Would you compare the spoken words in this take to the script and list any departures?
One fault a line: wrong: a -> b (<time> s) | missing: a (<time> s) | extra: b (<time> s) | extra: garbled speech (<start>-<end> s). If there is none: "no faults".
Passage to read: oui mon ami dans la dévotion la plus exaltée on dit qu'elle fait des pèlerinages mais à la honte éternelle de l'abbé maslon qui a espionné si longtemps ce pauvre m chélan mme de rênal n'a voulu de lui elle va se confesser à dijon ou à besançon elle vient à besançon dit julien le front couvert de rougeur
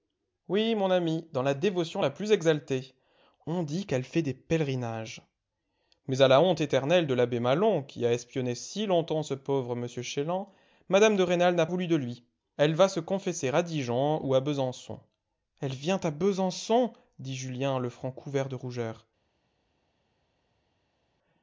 no faults